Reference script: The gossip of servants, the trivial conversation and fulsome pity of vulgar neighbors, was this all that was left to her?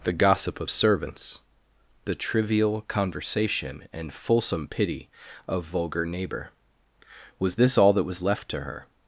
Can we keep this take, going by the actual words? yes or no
no